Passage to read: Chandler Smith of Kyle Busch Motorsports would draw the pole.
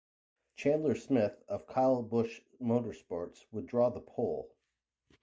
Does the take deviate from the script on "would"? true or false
false